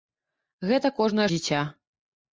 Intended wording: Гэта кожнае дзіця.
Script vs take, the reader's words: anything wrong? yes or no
no